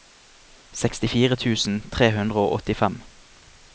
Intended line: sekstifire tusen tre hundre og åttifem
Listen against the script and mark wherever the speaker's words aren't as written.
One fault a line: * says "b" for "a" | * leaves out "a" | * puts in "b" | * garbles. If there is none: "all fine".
all fine